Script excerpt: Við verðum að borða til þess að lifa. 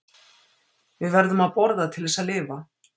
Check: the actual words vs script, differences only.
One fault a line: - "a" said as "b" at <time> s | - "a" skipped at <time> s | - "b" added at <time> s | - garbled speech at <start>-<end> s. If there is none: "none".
none